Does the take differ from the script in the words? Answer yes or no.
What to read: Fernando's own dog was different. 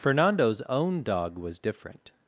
no